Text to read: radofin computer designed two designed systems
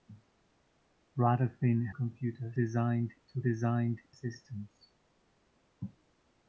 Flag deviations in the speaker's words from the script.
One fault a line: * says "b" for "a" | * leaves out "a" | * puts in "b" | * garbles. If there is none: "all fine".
all fine